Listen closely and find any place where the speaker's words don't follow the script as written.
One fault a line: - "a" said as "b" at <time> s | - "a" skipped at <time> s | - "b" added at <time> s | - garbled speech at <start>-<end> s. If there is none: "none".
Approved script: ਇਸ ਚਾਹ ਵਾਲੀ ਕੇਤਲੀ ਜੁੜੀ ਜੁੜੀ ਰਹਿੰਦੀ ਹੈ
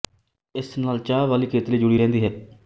- "ਨਾਲ" added at 0.8 s
- "ਜੁੜੀ" skipped at 2.0 s